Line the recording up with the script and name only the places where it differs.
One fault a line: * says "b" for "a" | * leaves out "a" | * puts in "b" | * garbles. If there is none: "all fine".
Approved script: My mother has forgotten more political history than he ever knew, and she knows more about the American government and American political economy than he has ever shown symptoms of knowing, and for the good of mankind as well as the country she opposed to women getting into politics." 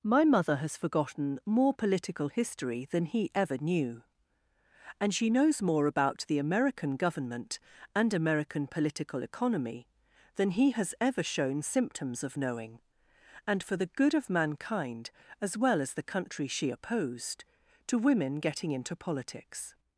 all fine